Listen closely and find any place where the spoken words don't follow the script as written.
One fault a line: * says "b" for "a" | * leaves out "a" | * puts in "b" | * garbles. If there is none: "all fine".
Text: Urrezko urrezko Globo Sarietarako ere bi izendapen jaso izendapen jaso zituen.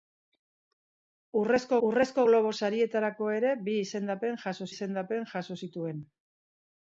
all fine